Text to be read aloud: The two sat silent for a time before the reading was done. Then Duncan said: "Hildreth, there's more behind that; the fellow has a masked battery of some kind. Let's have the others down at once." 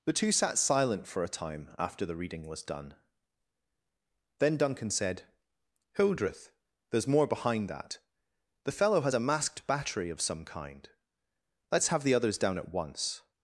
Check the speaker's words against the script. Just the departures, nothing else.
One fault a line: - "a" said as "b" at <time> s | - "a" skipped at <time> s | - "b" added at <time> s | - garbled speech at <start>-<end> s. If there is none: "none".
- "before" said as "after" at 1.8 s